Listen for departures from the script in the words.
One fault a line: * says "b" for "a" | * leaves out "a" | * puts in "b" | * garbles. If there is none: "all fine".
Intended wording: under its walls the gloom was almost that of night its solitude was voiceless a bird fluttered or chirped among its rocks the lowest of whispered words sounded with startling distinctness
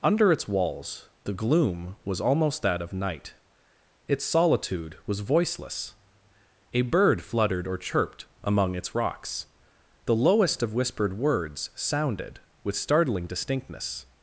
all fine